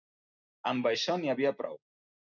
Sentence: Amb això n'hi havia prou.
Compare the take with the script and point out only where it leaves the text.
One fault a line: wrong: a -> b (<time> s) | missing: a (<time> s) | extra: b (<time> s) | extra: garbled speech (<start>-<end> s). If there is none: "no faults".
no faults